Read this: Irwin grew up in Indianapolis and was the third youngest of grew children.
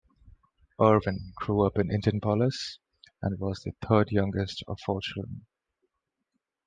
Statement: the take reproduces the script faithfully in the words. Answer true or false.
false